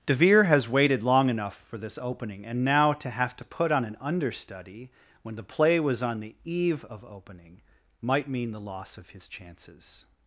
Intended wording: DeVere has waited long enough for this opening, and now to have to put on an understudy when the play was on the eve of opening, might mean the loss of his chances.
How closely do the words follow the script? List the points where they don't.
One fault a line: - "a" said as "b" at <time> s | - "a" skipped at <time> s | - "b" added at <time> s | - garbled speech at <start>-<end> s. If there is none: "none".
none